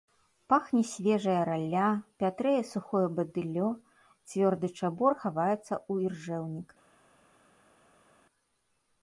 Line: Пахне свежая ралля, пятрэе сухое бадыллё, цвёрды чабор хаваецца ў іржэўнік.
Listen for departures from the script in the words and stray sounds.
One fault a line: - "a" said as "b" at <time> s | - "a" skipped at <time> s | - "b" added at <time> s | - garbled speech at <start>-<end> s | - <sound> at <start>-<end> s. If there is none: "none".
none